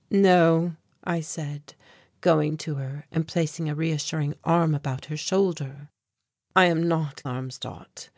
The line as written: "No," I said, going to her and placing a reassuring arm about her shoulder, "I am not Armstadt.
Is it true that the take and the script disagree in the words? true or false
false